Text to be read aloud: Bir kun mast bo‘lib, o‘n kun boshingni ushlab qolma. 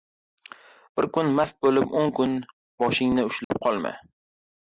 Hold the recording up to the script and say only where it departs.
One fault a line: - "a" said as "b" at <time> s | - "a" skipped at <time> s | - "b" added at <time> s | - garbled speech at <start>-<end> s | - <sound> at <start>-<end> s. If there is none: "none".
- dropout at 3.4-3.5 s